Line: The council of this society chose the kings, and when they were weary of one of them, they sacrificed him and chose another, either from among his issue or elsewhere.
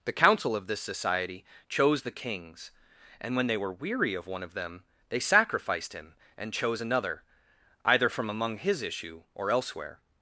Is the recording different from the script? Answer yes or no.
no